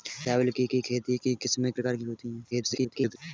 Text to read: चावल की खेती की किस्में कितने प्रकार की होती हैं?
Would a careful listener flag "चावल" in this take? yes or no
no